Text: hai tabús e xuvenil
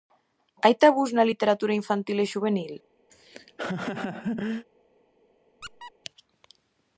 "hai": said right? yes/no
yes